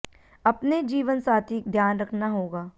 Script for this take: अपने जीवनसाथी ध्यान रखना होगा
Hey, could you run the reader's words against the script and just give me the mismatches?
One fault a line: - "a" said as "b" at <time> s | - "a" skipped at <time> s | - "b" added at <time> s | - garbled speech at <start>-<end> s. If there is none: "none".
none